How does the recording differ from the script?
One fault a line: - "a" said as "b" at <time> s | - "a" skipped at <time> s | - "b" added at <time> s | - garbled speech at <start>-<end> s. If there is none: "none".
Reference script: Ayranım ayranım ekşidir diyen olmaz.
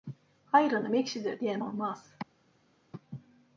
- "ayranım" skipped at 0.9 s